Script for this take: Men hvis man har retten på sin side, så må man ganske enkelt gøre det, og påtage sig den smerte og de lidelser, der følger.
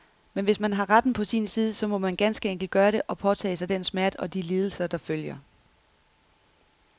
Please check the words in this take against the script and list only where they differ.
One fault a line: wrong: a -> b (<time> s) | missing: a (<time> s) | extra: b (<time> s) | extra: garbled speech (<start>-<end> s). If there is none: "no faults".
no faults